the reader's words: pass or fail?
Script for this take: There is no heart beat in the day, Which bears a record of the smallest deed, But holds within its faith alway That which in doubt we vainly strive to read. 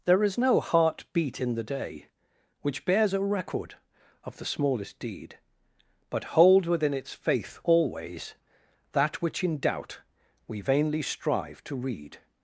fail